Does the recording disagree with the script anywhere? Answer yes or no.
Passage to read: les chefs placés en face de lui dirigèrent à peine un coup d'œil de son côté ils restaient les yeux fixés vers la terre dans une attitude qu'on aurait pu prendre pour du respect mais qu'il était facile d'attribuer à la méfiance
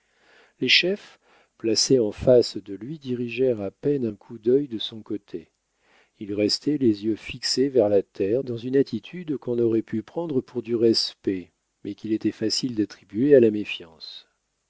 no